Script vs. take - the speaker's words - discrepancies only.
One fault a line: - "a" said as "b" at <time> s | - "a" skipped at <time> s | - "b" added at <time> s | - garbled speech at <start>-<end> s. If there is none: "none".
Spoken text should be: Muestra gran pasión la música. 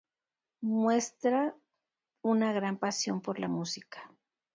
- "una" added at 2.2 s
- "por" added at 3.2 s